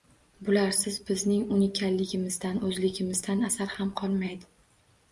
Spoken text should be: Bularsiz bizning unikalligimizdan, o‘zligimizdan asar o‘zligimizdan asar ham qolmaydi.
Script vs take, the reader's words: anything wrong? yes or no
yes